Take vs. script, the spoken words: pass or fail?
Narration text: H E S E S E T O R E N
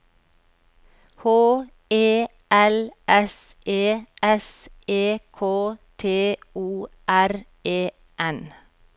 fail